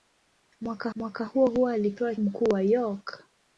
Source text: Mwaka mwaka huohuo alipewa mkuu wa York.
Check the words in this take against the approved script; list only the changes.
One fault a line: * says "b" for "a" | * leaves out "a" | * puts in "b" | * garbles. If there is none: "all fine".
all fine